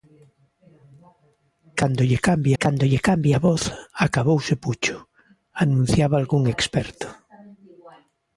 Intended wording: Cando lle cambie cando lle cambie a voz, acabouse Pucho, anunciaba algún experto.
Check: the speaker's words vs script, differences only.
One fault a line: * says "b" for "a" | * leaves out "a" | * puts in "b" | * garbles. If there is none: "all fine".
all fine